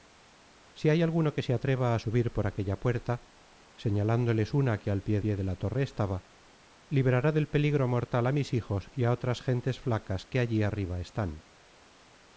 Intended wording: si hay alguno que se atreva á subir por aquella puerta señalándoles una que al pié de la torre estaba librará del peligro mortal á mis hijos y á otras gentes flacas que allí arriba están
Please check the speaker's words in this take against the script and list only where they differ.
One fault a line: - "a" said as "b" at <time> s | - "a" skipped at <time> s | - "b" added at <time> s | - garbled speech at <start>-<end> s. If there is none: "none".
- "pié" added at 5.2 s